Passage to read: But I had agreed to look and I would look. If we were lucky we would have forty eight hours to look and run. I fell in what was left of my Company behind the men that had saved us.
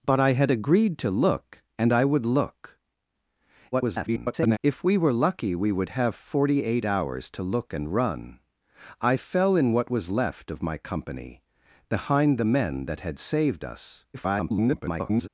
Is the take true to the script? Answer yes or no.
no